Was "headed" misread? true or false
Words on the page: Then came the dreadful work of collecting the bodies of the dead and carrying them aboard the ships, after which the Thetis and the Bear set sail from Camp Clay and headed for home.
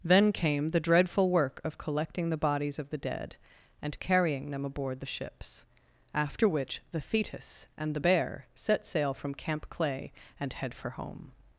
true